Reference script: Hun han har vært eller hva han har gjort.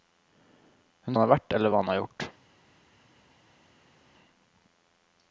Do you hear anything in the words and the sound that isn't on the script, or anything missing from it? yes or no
no